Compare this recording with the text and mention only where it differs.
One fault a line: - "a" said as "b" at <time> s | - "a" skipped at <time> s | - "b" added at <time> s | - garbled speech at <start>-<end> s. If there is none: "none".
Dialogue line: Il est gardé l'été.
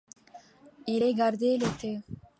none